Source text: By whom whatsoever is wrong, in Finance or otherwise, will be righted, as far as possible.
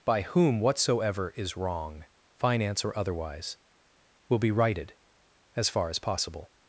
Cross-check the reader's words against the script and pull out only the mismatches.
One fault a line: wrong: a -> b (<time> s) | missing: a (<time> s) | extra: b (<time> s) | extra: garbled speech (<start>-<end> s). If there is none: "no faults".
missing: in (2.0 s)